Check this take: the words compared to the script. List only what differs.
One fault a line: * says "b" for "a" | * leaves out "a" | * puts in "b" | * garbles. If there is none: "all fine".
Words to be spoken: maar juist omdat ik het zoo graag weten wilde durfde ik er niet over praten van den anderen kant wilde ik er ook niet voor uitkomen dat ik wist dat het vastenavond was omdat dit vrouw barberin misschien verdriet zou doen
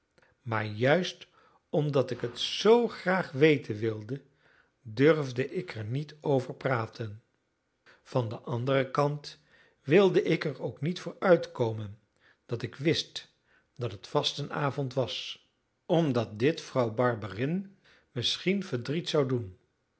all fine